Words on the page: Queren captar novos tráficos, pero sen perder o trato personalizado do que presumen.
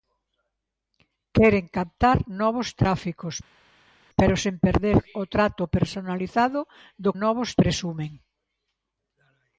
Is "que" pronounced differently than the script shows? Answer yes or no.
yes